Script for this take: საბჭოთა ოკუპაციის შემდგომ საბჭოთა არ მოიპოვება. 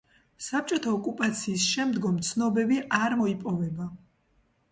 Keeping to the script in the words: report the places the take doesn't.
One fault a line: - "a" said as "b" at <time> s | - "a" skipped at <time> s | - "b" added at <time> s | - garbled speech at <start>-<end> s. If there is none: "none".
- "საბჭოთა" said as "ცნობები" at 2.3 s